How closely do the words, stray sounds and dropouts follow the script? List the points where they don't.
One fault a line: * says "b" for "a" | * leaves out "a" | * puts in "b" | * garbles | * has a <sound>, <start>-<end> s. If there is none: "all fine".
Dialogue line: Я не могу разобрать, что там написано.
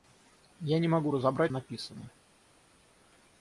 * leaves out "что там"